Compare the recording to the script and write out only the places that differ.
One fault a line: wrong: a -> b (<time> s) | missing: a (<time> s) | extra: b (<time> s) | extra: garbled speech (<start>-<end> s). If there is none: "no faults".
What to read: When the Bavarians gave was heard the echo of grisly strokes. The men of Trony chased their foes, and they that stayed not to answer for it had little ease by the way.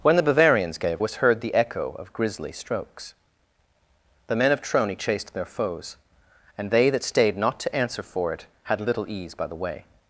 no faults